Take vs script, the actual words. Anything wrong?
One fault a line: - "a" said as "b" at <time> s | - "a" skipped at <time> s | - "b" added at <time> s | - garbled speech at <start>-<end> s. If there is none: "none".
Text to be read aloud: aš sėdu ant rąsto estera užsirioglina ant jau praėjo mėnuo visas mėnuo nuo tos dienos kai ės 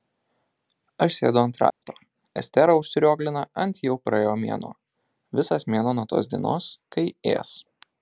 none